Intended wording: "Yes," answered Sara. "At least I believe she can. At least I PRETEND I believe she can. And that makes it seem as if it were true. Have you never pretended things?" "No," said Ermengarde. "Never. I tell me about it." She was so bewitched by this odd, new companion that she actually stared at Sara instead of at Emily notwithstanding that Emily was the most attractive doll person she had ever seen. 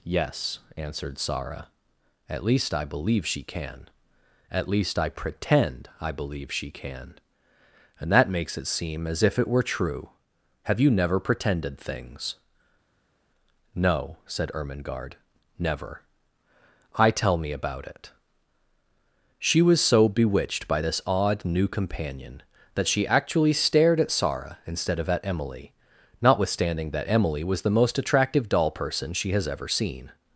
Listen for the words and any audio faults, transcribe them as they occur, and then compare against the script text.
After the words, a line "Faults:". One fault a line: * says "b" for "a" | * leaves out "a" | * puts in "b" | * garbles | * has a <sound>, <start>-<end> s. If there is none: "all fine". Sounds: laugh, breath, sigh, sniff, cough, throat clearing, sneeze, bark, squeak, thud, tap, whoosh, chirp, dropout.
"Yes," answered Sara. "At least I believe she can. At least I PRETEND I believe she can. And that makes it seem as if it were true. Have you never pretended things?" "No," said Ermengarde. "Never. I tell me about it." She was so bewitched by this odd, new companion that she actually stared at Sara instead of at Emily notwithstanding that Emily was the most attractive doll person she has ever seen.
Faults:
* says "has" for "had"